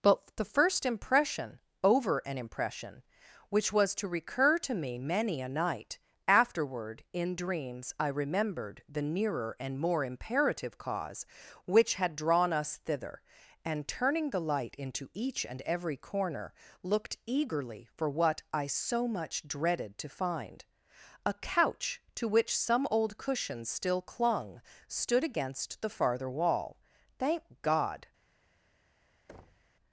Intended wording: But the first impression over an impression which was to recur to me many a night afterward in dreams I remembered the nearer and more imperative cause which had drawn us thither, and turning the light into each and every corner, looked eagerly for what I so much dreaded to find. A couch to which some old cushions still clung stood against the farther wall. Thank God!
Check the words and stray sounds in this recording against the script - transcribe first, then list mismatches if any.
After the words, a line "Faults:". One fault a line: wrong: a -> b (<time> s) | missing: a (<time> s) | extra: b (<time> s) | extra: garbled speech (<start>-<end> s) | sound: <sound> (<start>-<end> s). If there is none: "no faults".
But the first impression over an impression which was to recur to me many a night afterward in dreams I remembered the nearer and more imperative cause which had drawn us thither, and turning the light into each and every corner, looked eagerly for what I so much dreaded to find. A couch to which some old cushions still clung stood against the farther wall. Thank God!
Faults:
sound: thud (29.3-29.7 s)